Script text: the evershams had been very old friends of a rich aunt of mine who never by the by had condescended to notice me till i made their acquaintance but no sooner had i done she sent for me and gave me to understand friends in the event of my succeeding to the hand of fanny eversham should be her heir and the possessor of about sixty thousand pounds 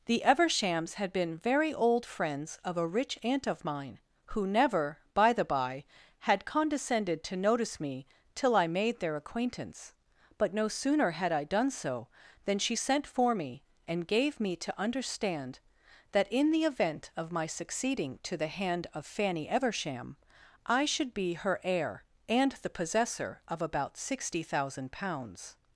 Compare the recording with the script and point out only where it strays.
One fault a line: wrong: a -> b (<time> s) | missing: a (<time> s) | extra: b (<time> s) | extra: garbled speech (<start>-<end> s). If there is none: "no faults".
extra: so than (11.7 s)
wrong: friends -> that (16.1 s)
extra: i (20.6 s)